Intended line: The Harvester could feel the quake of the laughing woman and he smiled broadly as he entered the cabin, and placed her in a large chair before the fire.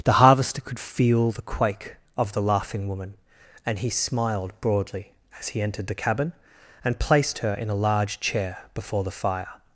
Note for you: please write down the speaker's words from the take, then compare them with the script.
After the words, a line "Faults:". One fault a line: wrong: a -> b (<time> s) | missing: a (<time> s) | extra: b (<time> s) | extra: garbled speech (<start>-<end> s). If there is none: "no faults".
The Harvester could feel the quake of the laughing woman and he smiled broadly as he entered the cabin, and placed her in a large chair before the fire.
Faults:
no faults